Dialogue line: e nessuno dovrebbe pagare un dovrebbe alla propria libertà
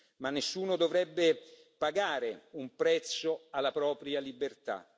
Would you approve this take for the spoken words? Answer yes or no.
no